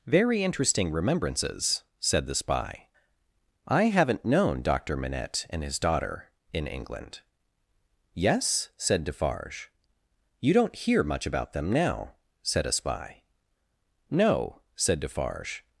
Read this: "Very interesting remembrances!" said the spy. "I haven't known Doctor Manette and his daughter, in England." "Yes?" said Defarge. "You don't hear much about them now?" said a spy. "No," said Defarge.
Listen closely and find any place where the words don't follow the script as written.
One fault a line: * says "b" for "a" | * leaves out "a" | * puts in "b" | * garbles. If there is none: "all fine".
all fine